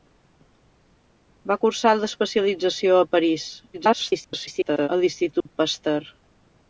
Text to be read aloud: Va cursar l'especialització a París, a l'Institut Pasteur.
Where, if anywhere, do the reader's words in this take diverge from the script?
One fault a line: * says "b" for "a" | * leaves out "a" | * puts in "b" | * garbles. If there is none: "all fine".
* garbles